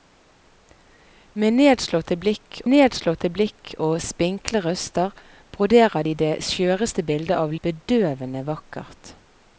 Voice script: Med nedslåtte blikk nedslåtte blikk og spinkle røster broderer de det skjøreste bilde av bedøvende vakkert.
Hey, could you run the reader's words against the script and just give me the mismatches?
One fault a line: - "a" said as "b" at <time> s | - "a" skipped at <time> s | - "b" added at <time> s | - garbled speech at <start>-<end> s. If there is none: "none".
none